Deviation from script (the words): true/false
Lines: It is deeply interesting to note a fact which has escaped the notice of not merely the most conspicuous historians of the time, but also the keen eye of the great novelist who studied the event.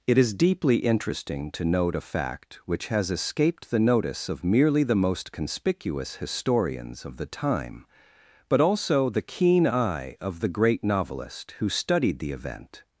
true